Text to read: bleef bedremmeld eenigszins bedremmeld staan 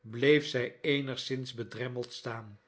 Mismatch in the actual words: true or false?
true